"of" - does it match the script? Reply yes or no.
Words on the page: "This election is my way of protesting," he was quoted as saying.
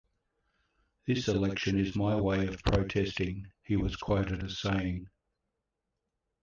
yes